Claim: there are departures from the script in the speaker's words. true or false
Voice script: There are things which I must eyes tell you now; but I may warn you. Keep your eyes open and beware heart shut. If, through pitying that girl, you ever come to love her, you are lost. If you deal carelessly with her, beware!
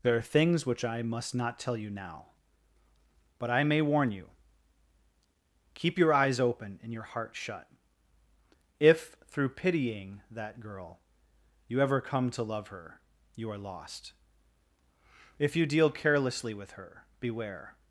true